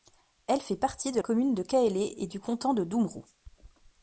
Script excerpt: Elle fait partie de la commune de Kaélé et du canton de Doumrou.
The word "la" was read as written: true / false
false